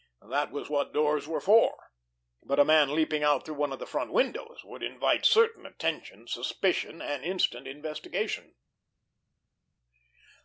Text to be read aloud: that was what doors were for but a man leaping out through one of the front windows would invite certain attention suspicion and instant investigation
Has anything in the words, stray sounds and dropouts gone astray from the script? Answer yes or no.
no